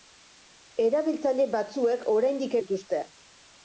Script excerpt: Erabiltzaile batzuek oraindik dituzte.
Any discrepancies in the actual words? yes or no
no